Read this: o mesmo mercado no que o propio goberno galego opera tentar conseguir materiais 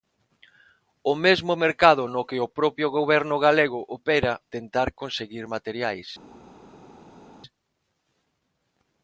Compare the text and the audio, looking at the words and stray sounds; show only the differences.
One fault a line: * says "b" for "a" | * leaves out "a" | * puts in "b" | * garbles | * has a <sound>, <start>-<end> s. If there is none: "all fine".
all fine